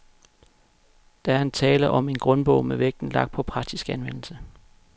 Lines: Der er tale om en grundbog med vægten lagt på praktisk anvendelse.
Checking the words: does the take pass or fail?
pass